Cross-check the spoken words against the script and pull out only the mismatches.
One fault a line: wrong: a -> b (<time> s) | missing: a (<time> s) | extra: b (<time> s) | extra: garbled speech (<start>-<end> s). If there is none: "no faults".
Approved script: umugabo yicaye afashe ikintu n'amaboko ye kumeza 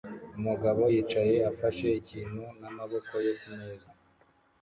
no faults